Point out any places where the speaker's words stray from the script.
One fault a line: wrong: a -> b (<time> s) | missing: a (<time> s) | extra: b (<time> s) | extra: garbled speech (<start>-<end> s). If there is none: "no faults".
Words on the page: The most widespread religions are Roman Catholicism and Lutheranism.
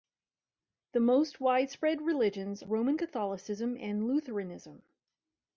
missing: are (2.6 s)